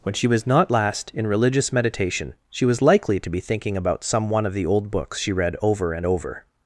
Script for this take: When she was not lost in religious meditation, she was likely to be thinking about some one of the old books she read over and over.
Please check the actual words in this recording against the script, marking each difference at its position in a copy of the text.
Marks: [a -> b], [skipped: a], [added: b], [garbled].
When she was not [lost -> last] in religious meditation, she was likely to be thinking about some one of the old books she read over and over.